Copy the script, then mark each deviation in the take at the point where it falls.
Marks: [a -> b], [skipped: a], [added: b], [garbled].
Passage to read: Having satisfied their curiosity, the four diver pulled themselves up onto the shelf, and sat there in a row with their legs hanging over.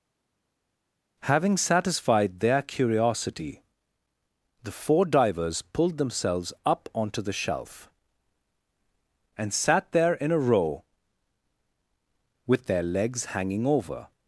Having satisfied their curiosity, the four [diver -> divers] pulled themselves up onto the shelf, and sat there in a row with their legs hanging over.